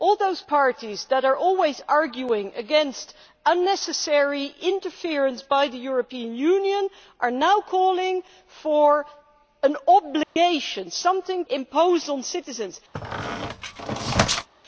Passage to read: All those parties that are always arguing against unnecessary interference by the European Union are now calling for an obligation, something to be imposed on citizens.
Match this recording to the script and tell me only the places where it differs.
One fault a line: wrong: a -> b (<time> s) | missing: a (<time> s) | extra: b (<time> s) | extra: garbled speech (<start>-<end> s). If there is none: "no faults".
missing: to be (11.4 s)